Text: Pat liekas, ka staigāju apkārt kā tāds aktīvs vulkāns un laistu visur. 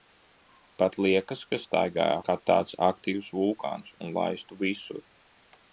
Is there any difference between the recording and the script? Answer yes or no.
yes